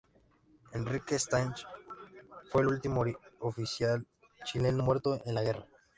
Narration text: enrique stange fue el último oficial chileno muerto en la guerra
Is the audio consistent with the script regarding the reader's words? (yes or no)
yes